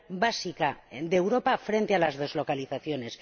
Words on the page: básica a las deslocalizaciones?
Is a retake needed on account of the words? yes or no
yes